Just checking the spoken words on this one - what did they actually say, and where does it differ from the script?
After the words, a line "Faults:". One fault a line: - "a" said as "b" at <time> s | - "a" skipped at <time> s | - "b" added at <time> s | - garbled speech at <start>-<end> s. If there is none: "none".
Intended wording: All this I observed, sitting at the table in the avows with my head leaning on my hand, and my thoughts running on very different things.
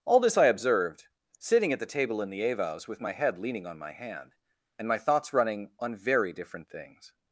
All this I observed, sitting at the table in the avows with my head leaning on my hand, and my thoughts running on very different things.
Faults:
none